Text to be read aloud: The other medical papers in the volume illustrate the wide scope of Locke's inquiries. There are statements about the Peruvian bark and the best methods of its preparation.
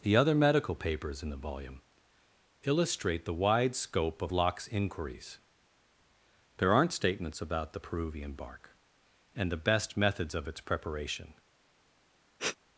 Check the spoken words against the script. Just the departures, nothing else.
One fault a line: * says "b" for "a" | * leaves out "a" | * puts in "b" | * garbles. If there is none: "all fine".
* says "aren't" for "are"